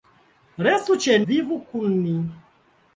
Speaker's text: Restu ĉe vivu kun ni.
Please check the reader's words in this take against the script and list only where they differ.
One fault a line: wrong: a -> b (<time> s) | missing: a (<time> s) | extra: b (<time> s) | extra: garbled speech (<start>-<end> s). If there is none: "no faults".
no faults